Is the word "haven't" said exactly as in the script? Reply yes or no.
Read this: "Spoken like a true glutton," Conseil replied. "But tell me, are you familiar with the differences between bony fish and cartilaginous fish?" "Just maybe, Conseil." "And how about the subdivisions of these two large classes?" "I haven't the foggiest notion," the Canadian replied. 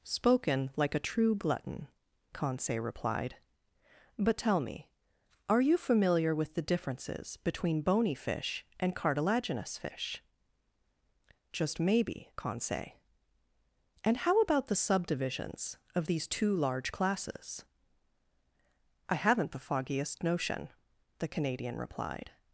yes